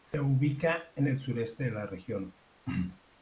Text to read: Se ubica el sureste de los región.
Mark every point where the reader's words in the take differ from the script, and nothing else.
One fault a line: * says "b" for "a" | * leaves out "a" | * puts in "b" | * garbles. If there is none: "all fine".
* puts in "en"
* says "la" for "los"